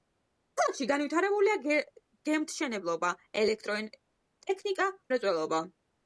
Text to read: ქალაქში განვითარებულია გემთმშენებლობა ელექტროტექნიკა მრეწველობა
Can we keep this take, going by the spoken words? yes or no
yes